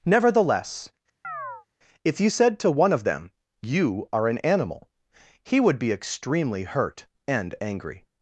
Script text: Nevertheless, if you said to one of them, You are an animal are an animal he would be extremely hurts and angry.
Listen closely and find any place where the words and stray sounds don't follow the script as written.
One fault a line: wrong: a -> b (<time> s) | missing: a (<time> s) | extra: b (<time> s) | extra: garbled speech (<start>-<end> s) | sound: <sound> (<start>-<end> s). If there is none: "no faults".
sound: chirp (1.2-1.7 s)
missing: are an animal (4.9 s)
wrong: hurts -> hurt (6.6 s)